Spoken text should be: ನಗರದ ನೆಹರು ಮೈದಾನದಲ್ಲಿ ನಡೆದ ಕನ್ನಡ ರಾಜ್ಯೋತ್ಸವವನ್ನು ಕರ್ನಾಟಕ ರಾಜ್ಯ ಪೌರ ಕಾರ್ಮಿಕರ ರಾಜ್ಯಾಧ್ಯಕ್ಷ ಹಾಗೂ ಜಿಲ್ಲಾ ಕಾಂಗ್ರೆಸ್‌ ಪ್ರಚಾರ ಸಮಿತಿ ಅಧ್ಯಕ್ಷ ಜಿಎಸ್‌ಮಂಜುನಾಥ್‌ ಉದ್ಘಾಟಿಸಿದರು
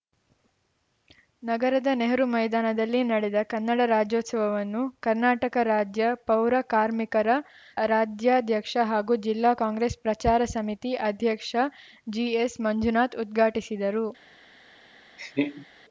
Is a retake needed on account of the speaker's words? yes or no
no